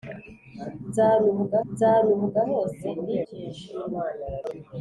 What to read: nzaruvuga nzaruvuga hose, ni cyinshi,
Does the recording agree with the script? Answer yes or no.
yes